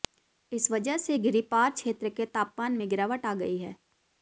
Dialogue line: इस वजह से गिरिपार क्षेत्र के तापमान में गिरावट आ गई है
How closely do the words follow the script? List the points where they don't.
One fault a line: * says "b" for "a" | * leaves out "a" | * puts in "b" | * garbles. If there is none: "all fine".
all fine